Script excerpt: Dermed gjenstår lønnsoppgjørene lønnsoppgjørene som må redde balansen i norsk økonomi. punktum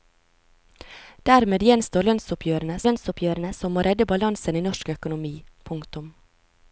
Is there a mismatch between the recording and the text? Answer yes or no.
no